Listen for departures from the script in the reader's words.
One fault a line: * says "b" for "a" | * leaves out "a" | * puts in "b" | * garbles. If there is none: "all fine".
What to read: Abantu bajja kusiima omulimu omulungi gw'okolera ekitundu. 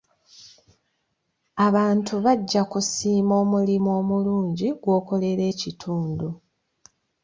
all fine